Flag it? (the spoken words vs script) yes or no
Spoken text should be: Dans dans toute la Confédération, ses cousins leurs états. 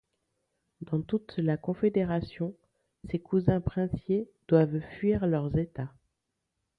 yes